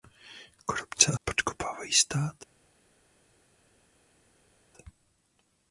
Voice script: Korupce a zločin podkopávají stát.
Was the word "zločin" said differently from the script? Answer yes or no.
yes